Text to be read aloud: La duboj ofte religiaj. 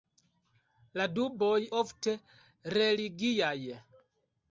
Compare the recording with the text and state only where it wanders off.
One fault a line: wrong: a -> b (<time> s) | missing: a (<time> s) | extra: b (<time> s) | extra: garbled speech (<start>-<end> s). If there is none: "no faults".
no faults